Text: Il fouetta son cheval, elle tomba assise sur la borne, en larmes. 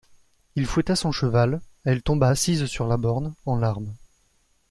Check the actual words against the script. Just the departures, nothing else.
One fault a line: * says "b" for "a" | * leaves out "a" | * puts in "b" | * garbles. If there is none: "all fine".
all fine